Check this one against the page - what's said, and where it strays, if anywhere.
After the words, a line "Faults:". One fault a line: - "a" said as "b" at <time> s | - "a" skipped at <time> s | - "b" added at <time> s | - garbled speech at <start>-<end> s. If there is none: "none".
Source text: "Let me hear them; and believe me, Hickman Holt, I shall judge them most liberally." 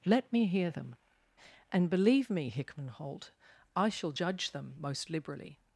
"Let me hear them; and believe me, Hickman Holt, I shall judge them most liberally."
Faults:
none